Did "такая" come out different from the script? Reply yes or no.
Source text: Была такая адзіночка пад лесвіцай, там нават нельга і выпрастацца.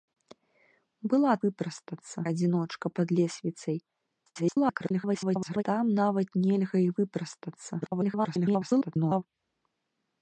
yes